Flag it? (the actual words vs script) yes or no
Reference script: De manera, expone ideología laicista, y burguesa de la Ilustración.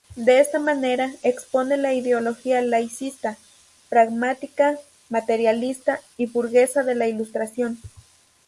yes